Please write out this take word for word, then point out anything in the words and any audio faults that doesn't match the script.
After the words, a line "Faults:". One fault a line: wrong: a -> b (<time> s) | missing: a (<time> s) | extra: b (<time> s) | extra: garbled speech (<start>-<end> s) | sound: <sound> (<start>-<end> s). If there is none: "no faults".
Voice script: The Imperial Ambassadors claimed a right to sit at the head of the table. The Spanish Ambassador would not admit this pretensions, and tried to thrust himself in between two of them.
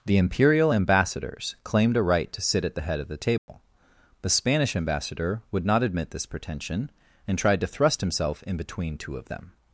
The Imperial Ambassadors claimed a right to sit at the head of the table. The Spanish Ambassador would not admit this pretension, and tried to thrust himself in between two of them.
Faults:
sound: dropout (3.4-3.5 s)
wrong: pretensions -> pretension (6.3 s)